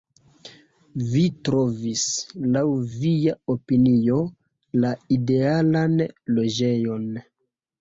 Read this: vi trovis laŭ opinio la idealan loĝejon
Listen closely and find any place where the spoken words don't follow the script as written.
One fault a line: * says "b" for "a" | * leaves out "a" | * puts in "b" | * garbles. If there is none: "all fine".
* puts in "via"